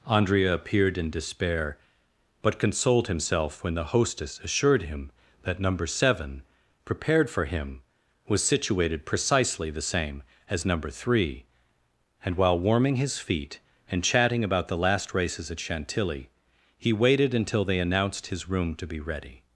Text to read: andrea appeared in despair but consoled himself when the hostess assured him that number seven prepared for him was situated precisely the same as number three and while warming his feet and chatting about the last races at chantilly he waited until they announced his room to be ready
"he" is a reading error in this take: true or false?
false